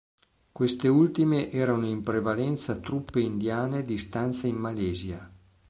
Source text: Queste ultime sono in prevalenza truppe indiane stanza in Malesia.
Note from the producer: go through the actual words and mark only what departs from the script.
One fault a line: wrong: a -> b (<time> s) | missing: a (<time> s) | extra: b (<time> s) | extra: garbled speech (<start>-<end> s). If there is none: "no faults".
wrong: sono -> erano (1.5 s)
extra: di (3.8 s)